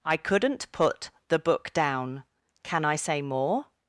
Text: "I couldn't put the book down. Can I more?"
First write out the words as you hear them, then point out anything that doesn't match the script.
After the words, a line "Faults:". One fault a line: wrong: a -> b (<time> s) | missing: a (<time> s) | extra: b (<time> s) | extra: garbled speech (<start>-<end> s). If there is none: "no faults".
"I couldn't put the book down. Can I say more?"
Faults:
extra: say (3.0 s)